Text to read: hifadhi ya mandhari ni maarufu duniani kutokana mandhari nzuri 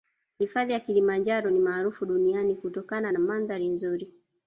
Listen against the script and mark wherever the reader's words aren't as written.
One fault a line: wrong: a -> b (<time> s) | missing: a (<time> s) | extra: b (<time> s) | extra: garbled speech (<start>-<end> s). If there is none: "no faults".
wrong: mandhari -> kilimanjaro (0.8 s)
extra: na (3.1 s)